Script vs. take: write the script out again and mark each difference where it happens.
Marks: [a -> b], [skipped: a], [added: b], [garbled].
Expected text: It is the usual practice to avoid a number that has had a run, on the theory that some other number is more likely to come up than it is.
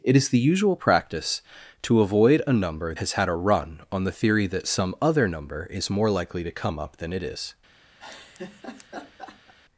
It is the usual practice to avoid a number [skipped: that] has had a run, on the theory that some other number is more likely to come up than it is.